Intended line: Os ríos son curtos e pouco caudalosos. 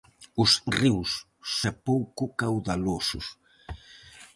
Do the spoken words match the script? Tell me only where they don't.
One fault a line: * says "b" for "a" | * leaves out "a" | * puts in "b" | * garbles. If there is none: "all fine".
* leaves out "son curtos"